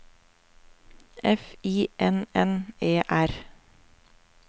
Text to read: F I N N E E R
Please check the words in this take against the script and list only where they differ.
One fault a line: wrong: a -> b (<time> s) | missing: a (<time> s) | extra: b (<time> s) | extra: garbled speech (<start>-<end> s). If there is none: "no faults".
missing: E (3.0 s)